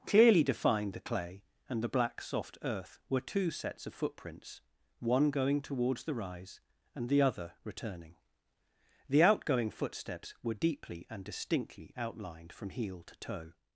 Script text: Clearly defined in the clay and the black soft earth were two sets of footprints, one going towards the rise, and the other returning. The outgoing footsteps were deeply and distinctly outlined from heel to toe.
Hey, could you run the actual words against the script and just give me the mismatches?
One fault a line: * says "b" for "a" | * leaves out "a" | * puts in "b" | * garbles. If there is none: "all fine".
* leaves out "in"